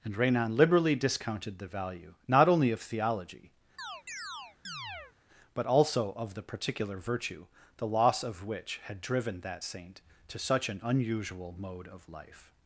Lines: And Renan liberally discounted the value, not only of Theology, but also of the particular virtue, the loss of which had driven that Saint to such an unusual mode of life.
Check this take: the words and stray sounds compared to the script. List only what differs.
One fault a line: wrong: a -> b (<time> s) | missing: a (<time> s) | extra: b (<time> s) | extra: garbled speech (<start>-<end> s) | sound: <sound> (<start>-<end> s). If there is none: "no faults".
sound: chirp (3.8-5.1 s)